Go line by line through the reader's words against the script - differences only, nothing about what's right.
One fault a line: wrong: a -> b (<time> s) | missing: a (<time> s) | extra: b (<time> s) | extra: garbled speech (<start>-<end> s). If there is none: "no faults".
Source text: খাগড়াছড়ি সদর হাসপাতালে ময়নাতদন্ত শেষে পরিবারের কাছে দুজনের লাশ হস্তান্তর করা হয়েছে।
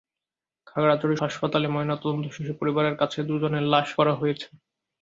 missing: সদর (1.1 s)
missing: হস্তান্তর (3.9 s)